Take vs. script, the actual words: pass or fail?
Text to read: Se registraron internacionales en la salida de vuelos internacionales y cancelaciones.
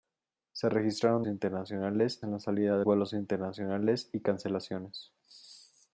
pass